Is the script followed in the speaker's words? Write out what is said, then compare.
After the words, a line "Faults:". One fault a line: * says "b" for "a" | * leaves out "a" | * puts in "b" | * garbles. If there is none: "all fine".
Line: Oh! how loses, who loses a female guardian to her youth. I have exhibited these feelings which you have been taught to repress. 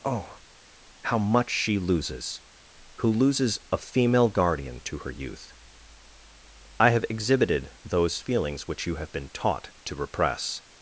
Oh! how much she loses, who loses a female guardian to her youth. I have exhibited those feelings which you have been taught to repress.
Faults:
* puts in "much she"
* says "those" for "these"